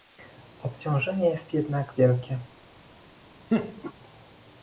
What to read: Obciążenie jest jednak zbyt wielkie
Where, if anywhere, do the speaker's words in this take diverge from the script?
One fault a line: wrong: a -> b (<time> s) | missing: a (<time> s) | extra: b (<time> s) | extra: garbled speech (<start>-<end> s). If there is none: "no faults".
missing: zbyt (1.9 s)